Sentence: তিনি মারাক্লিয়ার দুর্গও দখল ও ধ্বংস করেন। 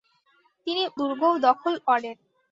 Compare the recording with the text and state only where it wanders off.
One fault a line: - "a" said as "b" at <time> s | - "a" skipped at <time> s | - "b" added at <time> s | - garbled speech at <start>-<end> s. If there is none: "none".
- "মারাক্লিয়ার" skipped at 0.8 s
- "ও ধ্বংস" skipped at 1.7 s